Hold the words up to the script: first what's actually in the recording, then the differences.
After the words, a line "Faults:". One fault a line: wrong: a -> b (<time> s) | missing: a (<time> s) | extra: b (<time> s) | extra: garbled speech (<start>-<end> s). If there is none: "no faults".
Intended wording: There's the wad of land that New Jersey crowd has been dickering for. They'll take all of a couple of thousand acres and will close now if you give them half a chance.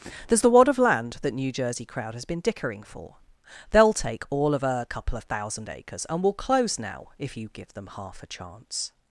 There's the wad of land that New Jersey crowd has been dickering for. They'll take all of a couple of thousand acres and will close now if you give them half a chance.
Faults:
no faults